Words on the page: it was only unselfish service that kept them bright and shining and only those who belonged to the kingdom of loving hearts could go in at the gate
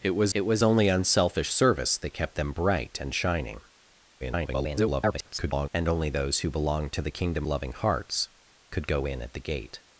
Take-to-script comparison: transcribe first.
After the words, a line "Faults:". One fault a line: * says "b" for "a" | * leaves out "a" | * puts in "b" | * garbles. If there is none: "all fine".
it was it was only unselfish service that kept them bright and shining [garbled] and only those who belonged to the kingdom loving hearts could go in at the gate
Faults:
* puts in "it was"
* garbles
* leaves out "of"